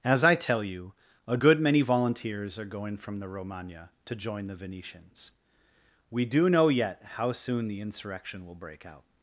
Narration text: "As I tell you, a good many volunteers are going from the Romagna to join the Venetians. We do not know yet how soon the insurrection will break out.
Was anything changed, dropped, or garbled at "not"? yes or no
yes